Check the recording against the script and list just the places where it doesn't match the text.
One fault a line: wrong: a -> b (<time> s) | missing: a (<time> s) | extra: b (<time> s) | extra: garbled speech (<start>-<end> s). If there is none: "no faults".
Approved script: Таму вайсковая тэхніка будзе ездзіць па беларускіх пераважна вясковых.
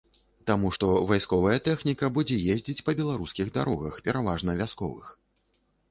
extra: што (0.7 s)
extra: дарогах (3.6 s)